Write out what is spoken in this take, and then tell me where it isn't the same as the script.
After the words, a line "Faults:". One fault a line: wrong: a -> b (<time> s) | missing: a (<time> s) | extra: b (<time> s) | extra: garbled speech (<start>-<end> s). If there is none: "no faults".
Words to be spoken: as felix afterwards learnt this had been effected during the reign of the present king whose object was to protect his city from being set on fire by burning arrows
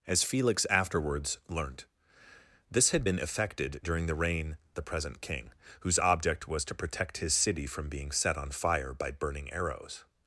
as felix afterwards learnt this had been effected during the reign the present king whose object was to protect his city from being set on fire by burning arrows
Faults:
missing: of (4.6 s)